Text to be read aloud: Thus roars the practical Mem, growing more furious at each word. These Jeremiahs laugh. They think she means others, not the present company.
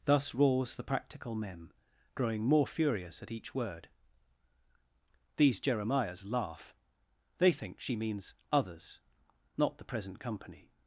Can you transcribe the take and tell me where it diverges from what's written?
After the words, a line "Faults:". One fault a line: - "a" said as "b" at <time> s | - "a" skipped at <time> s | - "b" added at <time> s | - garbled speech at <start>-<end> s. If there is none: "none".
Thus roars the practical Mem, growing more furious at each word. These Jeremiahs laugh. They think she means others, not the present company.
Faults:
none